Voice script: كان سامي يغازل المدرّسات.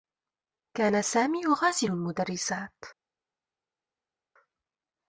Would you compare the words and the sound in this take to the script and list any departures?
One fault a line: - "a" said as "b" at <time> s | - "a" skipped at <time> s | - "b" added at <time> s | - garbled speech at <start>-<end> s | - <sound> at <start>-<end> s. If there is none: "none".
none